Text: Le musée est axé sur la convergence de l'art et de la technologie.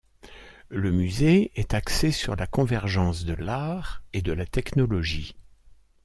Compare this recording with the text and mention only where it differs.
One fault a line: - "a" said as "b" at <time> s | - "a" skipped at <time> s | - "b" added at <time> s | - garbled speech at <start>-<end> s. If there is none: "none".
none